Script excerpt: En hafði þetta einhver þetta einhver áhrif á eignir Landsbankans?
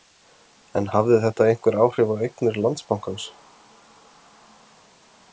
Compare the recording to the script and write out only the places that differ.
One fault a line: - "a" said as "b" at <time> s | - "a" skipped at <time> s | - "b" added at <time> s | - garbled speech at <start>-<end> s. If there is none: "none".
- "þetta einhver" skipped at 1.8 s